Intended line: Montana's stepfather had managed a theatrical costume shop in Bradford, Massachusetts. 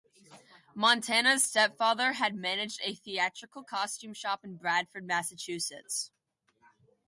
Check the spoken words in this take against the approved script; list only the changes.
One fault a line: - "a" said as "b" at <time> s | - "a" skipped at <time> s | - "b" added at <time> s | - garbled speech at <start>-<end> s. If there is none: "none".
none